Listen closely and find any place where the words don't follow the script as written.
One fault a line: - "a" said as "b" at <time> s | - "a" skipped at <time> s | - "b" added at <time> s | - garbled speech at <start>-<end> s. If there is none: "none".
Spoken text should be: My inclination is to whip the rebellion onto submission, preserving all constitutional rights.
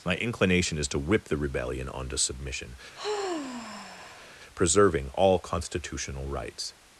none